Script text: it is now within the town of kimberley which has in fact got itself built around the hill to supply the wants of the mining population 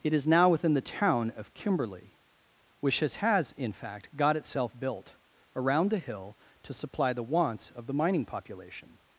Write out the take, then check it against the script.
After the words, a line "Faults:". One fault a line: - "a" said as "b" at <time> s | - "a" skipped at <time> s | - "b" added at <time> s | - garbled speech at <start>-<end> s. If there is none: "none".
it is now within the town of kimberley which has has in fact got itself built around the hill to supply the wants of the mining population
Faults:
- "has" added at 3.1 s